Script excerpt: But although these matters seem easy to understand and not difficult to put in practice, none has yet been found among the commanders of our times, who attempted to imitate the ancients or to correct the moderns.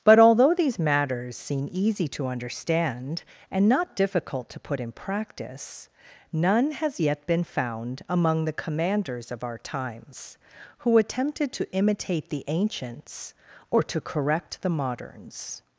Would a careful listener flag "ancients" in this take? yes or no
no